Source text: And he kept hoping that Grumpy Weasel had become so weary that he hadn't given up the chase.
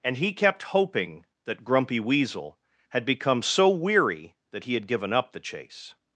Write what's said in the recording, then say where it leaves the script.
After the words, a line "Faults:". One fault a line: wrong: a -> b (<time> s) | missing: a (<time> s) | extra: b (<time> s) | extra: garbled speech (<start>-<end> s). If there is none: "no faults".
And he kept hoping that Grumpy Weasel had become so weary that he had given up the chase.
Faults:
wrong: hadn't -> had (4.7 s)